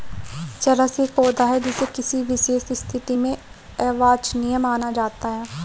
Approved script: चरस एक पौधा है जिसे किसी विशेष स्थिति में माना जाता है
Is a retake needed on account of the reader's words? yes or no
yes